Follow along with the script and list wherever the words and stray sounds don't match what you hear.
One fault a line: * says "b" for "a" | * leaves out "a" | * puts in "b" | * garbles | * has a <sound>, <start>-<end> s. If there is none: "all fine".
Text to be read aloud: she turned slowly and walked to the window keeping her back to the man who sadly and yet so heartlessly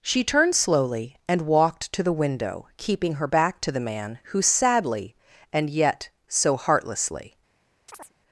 * has a chirp, 7.9-8.1 s